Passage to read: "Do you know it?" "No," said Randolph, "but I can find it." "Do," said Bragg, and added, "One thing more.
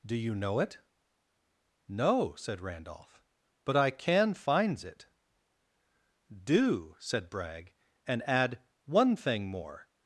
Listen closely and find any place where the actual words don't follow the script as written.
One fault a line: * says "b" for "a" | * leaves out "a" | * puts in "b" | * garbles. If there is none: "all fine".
* says "finds" for "find"
* says "add" for "added"